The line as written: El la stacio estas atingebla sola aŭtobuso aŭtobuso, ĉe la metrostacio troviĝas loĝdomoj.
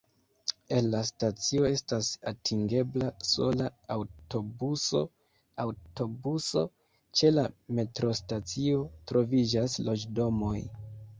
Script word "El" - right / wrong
right